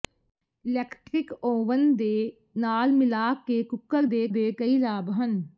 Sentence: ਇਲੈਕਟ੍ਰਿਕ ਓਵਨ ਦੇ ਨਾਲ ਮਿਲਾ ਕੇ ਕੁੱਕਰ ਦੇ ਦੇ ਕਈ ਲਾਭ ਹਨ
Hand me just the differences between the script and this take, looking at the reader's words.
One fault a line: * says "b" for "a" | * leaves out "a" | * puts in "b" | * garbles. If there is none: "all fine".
all fine